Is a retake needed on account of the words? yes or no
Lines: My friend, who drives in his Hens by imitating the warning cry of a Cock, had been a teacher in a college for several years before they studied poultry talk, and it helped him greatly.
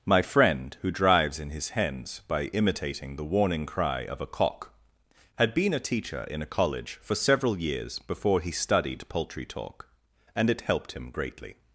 yes